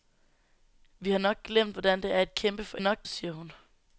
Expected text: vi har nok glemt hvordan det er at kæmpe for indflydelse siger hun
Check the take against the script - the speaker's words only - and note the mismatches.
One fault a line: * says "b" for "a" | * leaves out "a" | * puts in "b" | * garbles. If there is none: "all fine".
* says "nok" for "indflydelse"